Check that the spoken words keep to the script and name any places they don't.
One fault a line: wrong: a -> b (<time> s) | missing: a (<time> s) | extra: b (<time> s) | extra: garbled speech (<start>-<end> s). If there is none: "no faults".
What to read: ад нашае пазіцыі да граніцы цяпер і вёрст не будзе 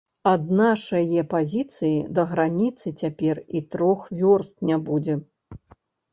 extra: трох (3.7 s)